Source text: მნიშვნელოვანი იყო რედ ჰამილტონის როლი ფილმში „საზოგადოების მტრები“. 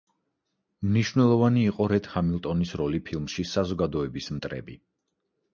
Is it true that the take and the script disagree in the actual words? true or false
false